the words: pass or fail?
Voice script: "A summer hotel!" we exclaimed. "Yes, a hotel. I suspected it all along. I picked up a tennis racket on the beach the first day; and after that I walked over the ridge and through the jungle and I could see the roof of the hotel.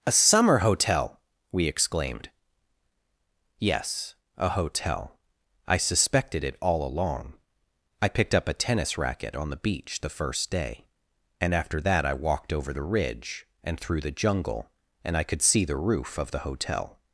pass